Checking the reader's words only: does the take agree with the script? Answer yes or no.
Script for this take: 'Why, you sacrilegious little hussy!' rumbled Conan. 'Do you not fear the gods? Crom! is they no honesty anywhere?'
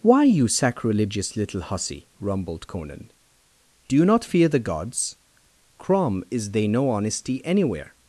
yes